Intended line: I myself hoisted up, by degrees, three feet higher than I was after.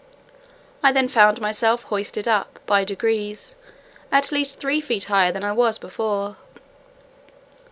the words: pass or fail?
fail